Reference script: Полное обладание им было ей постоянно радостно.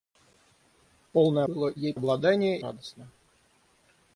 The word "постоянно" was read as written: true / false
false